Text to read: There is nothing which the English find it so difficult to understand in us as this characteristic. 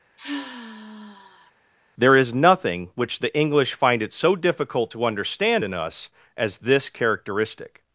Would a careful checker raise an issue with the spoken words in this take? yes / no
no